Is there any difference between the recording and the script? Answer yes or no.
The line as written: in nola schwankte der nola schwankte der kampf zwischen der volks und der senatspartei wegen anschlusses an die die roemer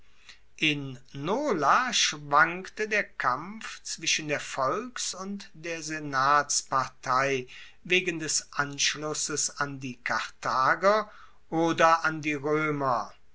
yes